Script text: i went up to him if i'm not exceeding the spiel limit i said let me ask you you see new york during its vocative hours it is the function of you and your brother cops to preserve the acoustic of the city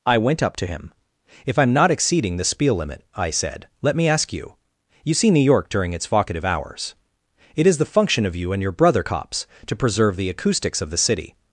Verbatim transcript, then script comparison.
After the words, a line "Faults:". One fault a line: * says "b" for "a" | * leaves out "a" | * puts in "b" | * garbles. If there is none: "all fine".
i went up to him if i'm not exceeding the spiel limit i said let me ask you you see new york during its vocative hours it is the function of you and your brother cops to preserve the acoustics of the city
Faults:
* says "acoustics" for "acoustic"